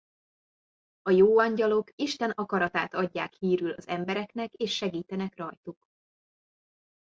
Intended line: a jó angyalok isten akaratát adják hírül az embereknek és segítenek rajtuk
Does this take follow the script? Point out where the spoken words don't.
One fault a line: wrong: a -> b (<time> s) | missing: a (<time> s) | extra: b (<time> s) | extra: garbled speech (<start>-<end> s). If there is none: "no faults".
no faults